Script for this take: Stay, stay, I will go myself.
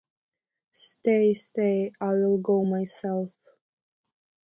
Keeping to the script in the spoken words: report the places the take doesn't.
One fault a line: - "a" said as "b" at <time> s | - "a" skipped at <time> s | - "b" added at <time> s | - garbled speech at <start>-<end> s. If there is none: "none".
none